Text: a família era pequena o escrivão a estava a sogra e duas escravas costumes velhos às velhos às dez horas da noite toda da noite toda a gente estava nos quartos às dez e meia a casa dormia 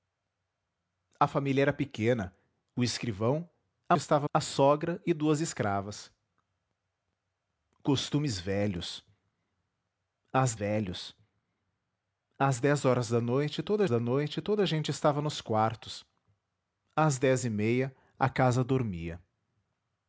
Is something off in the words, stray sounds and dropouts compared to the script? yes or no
no